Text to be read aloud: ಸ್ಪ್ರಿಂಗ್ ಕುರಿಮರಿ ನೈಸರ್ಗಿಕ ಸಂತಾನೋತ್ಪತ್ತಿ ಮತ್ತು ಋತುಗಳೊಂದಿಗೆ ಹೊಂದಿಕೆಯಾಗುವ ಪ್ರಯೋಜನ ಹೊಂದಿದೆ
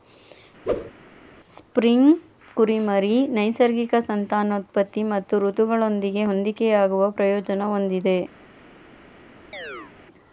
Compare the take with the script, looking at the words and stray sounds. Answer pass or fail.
fail